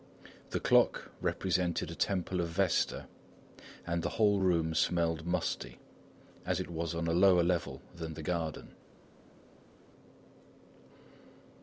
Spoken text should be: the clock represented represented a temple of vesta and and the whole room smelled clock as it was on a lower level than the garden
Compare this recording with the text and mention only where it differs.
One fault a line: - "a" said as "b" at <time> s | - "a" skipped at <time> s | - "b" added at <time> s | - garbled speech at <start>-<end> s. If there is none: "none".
- "represented" skipped at 1.9 s
- "and" skipped at 4.0 s
- "clock" said as "musty" at 5.3 s